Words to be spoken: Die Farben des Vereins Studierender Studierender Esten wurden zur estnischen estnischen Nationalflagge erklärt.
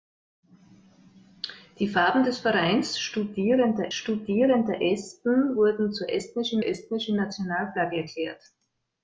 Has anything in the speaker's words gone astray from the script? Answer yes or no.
no